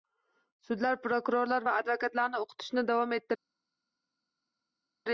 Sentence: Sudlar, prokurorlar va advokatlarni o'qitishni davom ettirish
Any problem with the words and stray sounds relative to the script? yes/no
no